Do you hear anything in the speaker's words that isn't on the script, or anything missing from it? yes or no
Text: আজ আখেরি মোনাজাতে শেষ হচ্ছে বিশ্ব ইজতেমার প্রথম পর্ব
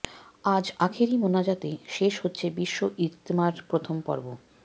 no